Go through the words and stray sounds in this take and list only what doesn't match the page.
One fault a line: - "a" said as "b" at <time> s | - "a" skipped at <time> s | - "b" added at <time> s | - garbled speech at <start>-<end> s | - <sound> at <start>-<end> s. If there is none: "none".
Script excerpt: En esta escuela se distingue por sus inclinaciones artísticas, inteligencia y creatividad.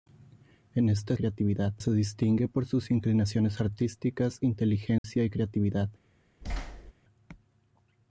- "escuela" said as "creatividad" at 1.1 s
- dropout at 5.0-5.0 s
- thud at 6.4-6.9 s